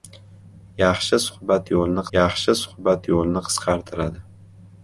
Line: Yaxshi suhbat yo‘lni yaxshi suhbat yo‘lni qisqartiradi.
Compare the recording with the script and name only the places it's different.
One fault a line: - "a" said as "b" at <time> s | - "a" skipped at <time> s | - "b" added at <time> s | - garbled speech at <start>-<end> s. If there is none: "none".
none